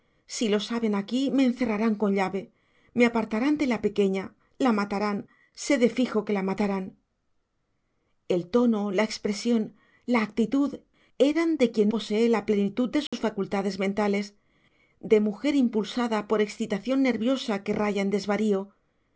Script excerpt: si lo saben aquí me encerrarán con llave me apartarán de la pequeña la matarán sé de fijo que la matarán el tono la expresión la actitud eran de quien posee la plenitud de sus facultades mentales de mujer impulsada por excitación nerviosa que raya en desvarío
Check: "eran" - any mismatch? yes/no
no